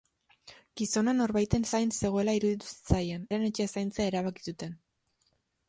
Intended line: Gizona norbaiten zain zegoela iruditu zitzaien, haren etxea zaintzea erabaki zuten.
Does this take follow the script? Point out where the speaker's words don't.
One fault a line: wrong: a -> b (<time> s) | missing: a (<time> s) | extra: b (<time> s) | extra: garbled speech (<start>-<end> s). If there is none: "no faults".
no faults